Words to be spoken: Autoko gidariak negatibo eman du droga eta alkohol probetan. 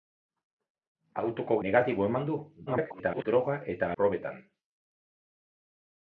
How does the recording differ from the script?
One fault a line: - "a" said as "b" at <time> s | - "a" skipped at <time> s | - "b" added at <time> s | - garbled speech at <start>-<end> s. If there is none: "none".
- "gidariak" skipped at 1.6 s
- garbled speech at 2.7-3.2 s
- "alkohol" skipped at 3.9 s